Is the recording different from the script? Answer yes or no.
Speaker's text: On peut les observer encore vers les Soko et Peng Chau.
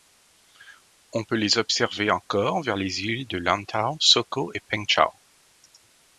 yes